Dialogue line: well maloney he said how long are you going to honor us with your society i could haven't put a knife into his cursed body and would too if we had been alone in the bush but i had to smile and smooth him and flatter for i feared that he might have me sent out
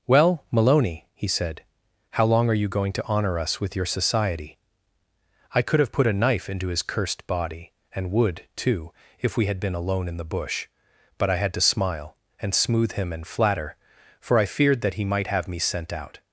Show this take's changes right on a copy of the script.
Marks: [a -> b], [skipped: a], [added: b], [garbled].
well maloney he said how long are you going to honor us with your society i could [haven't -> have] put a knife into his cursed body and would too if we had been alone in the bush but i had to smile and smooth him and flatter for i feared that he might have me sent out